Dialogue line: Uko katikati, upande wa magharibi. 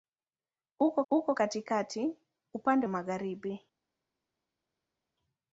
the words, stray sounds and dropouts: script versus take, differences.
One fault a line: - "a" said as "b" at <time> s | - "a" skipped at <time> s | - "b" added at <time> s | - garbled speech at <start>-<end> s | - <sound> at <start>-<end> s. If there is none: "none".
- "uko" added at 1.1 s
- "wa" skipped at 2.9 s